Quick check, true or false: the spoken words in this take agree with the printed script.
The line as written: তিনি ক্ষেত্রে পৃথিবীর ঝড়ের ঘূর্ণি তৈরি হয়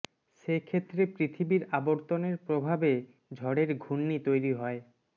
false